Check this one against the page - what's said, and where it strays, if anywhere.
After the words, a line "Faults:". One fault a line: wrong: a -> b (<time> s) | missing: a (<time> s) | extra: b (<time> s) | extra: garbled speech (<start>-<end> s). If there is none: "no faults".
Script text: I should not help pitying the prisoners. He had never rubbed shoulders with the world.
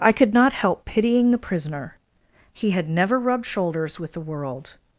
I could not help pitying the prisoner. He had never rubbed shoulders with the world.
Faults:
wrong: should -> could (0.1 s)
wrong: prisoners -> prisoner (1.4 s)